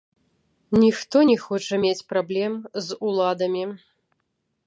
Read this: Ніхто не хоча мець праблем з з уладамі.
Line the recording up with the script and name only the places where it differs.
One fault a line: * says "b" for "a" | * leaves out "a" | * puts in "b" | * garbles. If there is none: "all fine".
* leaves out "з"